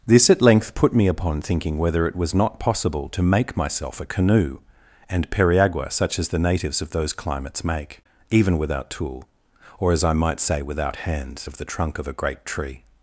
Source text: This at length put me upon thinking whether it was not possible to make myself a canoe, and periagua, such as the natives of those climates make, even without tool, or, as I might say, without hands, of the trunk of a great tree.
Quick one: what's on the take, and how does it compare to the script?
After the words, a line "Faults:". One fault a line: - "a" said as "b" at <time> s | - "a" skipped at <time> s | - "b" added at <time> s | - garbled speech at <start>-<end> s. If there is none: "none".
This at length put me upon thinking whether it was not possible to make myself a canoe, and periagua, such as the natives of those climates make, even without tool, or, as I might say, without hands, of the trunk of a great tree.
Faults:
none